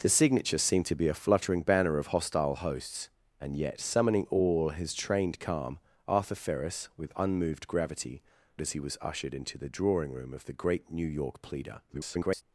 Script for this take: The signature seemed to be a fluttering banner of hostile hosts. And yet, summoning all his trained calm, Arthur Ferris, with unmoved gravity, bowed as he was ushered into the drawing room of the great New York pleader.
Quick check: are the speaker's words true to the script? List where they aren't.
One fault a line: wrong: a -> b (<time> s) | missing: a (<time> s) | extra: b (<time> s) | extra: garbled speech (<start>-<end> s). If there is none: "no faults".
missing: bowed (8.2 s)
extra: garbled speech (11.9-12.4 s)